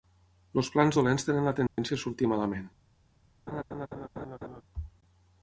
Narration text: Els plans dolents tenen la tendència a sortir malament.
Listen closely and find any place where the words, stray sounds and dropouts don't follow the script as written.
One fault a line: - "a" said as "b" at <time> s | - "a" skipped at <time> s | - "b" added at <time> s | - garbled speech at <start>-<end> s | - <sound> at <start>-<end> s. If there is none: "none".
- dropout at 1.7-1.8 s
- laugh at 3.5-4.6 s